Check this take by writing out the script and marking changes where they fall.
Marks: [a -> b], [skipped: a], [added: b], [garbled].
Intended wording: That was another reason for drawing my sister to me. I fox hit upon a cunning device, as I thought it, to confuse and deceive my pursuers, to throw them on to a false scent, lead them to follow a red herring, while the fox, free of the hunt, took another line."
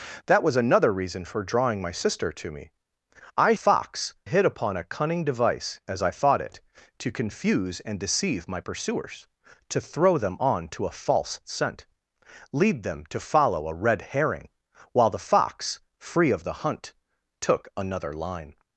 That was another reason for drawing my sister to me. I fox hit upon a cunning device, as I thought it, to confuse and deceive my pursuers, to throw them on to a false scent, lead them to follow a red herring, while the fox, free of the hunt, took another line."